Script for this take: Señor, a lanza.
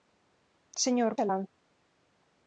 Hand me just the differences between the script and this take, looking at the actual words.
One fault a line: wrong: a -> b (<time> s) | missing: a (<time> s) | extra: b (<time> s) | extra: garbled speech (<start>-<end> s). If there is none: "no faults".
no faults